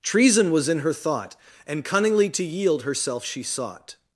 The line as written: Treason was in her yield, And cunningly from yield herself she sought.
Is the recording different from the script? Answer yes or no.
yes